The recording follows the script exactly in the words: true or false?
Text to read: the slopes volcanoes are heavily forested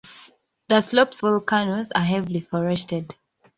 true